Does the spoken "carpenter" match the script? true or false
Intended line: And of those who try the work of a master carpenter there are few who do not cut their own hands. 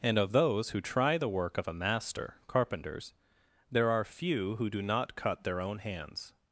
false